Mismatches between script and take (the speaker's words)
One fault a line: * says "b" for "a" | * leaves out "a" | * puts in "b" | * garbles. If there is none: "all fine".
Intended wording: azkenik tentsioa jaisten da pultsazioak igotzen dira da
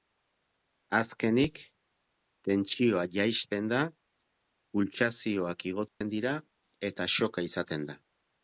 * puts in "eta shocka izaten"